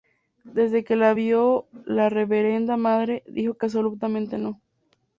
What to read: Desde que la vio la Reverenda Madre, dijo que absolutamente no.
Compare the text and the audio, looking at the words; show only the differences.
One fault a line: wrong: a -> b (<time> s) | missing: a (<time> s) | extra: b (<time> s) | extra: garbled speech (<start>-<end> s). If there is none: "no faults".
no faults